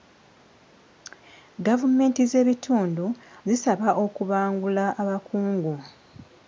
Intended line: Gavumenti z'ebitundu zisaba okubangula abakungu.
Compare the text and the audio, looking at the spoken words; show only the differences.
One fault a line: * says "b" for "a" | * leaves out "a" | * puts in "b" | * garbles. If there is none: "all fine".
all fine